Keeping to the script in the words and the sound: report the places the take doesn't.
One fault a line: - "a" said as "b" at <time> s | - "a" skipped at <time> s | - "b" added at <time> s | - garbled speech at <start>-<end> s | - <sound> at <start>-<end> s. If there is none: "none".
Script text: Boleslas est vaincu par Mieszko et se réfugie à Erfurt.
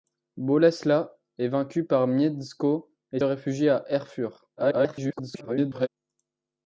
- "se" skipped at 3.2 s
- garbled speech at 4.6-5.9 s